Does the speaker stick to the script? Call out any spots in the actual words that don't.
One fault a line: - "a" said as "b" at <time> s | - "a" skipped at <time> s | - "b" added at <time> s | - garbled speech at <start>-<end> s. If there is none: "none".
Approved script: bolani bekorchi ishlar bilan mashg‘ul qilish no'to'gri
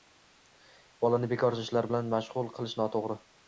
none